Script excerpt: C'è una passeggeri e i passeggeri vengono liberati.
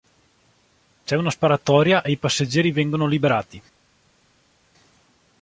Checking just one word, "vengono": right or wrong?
right